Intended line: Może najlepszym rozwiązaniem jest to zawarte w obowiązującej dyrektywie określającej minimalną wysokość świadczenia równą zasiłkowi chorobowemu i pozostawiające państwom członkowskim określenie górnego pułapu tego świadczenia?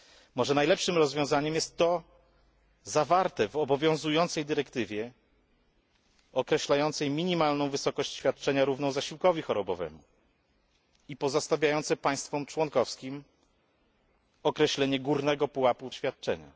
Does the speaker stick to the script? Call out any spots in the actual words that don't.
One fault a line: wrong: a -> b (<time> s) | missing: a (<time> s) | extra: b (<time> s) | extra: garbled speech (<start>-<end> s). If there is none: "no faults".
missing: tego (15.9 s)